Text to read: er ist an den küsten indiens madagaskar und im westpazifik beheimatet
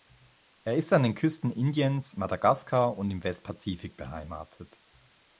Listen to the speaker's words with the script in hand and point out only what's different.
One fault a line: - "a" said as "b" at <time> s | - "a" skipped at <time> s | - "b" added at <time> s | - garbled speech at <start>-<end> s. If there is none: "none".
none